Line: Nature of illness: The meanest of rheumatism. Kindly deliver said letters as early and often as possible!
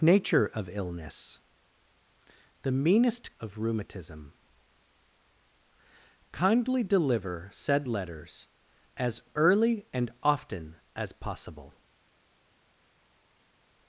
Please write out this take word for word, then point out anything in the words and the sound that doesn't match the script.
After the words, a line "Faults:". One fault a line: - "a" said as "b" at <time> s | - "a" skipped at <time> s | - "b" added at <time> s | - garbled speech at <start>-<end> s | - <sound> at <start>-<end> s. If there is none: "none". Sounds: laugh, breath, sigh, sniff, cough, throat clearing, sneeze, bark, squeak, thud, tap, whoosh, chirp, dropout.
Nature of illness: The meanest of rheumatism. Kindly deliver said letters as early and often as possible!
Faults:
none